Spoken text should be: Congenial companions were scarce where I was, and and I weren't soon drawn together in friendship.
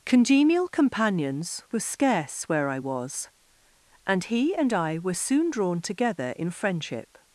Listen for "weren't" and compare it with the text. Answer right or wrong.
wrong